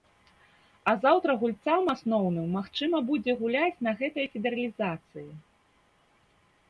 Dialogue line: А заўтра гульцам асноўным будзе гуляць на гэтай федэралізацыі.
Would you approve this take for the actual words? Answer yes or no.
no